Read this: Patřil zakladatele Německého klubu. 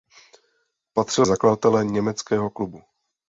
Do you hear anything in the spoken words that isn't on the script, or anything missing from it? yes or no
no